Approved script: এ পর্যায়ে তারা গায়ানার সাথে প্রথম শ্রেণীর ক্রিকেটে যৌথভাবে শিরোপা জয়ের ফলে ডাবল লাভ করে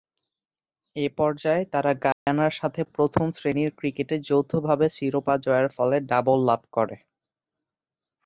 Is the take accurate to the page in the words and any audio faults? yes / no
no